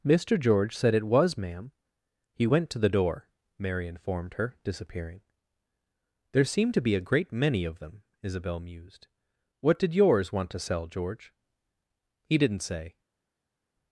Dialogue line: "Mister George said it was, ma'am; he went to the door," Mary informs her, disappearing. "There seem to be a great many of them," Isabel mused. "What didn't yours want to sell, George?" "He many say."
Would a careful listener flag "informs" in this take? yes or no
yes